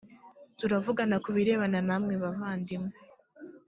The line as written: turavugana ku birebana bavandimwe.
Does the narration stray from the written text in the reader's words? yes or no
yes